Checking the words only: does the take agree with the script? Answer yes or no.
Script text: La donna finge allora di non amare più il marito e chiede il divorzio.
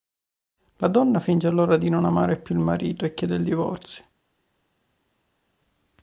yes